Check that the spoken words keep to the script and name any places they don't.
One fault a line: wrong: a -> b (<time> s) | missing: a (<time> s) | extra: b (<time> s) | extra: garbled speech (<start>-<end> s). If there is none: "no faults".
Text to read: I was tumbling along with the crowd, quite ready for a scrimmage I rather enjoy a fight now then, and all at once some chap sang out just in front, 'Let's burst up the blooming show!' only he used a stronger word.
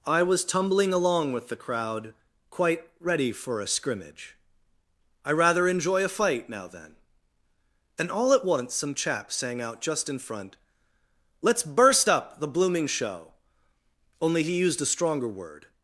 no faults